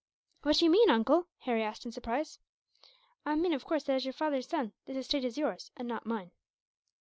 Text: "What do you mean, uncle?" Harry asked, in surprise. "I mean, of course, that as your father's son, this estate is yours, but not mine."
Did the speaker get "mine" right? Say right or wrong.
right